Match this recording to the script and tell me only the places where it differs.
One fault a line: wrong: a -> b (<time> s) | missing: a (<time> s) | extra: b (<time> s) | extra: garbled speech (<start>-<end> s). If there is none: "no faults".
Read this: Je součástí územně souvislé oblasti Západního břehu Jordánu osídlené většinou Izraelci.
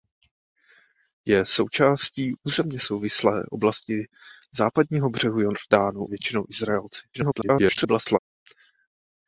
missing: osídlené (6.0 s)
extra: garbled speech (7.1-8.2 s)